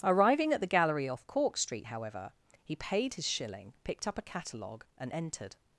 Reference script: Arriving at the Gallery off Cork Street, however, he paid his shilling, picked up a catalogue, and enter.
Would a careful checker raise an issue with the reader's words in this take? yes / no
yes